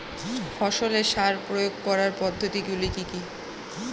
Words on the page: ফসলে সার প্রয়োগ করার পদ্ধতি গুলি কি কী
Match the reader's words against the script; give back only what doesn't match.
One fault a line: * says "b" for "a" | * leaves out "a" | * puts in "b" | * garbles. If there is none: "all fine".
all fine